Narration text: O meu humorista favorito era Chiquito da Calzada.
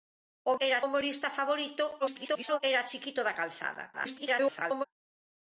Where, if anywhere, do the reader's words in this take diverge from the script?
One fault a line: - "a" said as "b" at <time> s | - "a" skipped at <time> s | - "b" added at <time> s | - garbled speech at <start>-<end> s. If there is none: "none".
- "meu" said as "era" at 0.6 s
- garbled speech at 2.0-2.6 s
- garbled speech at 3.9-4.8 s